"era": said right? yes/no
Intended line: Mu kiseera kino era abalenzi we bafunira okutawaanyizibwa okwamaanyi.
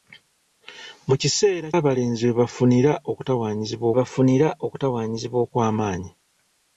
no